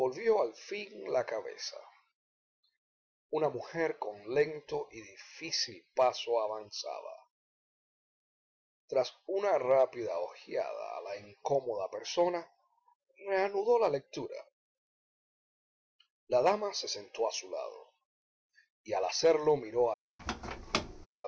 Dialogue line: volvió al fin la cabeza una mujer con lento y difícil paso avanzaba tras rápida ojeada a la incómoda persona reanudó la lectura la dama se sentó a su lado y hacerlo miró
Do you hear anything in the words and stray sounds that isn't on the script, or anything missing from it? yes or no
yes